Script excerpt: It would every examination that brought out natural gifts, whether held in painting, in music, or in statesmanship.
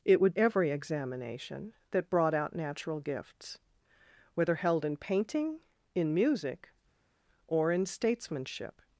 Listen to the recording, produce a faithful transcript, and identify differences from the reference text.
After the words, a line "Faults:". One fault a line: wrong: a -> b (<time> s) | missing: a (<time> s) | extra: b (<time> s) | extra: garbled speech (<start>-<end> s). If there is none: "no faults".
It would every examination that brought out natural gifts, whether held in painting, in music, or in statesmanship.
Faults:
no faults